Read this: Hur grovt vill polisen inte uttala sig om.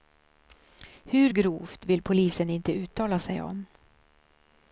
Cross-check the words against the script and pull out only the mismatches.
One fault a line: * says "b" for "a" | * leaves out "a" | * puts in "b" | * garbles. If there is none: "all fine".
all fine